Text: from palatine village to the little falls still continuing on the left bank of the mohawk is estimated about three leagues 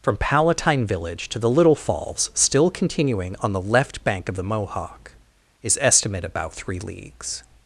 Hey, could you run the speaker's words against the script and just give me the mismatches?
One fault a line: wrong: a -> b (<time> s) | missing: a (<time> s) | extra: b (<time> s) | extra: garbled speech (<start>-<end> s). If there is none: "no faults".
wrong: estimated -> estimate (5.8 s)